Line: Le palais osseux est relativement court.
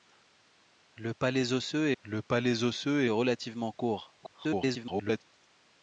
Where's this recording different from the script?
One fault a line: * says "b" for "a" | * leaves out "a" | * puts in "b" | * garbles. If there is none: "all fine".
* puts in "le palais osseux"
* garbles